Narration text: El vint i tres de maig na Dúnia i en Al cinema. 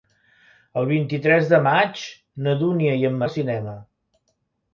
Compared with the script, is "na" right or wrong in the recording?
right